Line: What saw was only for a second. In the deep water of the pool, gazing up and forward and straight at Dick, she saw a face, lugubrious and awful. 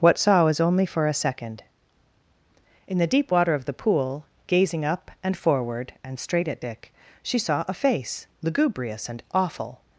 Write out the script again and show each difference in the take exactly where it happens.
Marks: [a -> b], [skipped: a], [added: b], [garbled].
What saw was only for a second. In the deep water of the pool, gazing up and forward and straight at Dick, she saw a face, lugubrious and awful.